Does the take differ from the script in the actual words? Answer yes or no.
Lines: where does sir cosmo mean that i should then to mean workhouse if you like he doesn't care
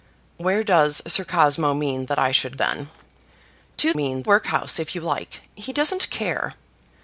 no